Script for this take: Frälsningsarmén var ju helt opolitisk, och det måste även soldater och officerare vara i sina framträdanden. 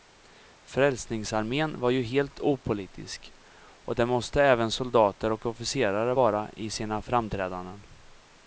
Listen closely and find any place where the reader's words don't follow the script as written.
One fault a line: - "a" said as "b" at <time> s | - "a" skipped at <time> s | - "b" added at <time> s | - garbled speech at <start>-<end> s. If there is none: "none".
none